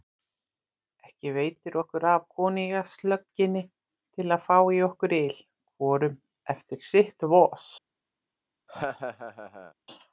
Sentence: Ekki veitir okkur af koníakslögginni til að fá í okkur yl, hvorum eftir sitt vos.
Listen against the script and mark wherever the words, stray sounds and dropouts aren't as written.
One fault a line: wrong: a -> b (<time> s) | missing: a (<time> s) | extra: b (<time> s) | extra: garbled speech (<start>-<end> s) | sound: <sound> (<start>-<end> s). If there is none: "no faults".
sound: laugh (8.7-9.7 s)